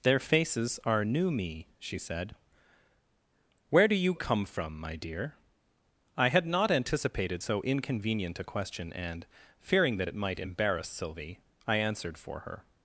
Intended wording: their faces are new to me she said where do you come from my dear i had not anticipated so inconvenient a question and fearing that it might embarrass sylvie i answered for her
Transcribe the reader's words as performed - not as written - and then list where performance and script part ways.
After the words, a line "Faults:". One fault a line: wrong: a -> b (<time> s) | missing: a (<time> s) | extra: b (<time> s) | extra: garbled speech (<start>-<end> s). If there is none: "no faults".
their faces are new me she said where do you come from my dear i had not anticipated so inconvenient a question and fearing that it might embarrass sylvie i answered for her
Faults:
missing: to (1.3 s)